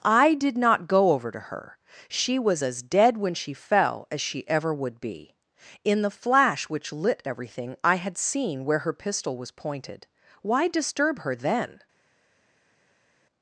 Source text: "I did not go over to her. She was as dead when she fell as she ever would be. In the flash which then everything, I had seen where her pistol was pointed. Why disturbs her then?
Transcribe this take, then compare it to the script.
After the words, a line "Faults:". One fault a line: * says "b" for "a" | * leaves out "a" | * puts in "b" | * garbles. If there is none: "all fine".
"I did not go over to her. She was as dead when she fell as she ever would be. In the flash which lit everything, I had seen where her pistol was pointed. Why disturb her then?
Faults:
* says "lit" for "then"
* says "disturb" for "disturbs"